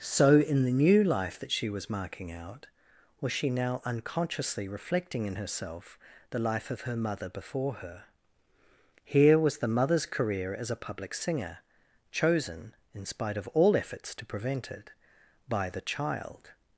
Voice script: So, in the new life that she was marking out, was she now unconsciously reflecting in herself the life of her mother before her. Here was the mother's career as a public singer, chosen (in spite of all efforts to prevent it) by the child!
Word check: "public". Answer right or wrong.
right